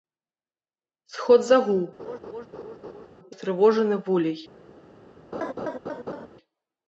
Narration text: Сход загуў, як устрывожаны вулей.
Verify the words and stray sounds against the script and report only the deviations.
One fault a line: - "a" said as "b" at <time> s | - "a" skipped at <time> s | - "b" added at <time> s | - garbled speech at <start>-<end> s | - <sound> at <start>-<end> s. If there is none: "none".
- "як" skipped at 1.8 s
- laugh at 2.0-3.1 s
- laugh at 5.3-6.3 s